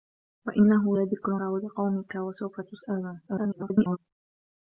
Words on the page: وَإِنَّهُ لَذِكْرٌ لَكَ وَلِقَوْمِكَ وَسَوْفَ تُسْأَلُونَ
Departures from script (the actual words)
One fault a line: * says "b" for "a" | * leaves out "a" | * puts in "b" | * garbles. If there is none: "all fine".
* leaves out "لَكَ"
* garbles